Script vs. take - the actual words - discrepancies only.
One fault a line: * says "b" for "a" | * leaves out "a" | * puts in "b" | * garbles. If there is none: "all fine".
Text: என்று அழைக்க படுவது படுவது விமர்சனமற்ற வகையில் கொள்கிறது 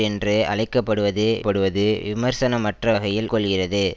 all fine